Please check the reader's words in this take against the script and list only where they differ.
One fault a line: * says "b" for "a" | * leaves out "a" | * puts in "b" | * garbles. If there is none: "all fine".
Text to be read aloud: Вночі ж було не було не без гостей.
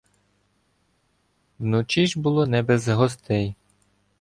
* leaves out "було не"